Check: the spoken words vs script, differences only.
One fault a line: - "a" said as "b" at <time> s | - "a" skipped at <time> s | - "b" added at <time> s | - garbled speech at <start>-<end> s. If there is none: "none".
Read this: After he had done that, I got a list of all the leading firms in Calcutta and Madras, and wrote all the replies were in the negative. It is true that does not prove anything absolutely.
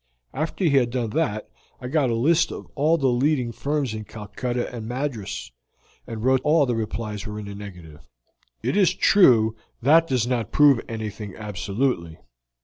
none